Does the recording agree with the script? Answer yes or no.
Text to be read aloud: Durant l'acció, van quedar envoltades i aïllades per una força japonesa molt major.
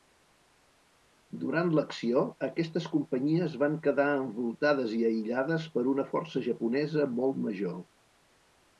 no